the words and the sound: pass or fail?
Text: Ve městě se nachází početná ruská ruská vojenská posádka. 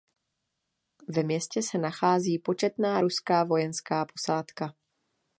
fail